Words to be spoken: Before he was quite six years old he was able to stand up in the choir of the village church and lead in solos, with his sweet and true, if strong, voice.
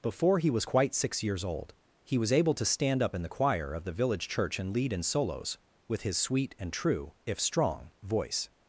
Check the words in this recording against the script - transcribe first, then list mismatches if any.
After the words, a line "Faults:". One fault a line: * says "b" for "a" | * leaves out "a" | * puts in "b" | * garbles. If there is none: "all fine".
Before he was quite six years old he was able to stand up in the choir of the village church and lead in solos, with his sweet and true, if strong, voice.
Faults:
all fine